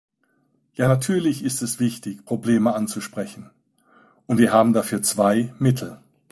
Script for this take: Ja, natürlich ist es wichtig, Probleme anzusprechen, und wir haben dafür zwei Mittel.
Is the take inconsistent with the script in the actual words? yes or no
no